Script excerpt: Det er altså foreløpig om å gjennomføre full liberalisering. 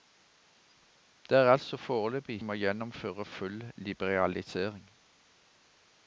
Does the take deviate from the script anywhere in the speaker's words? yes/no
no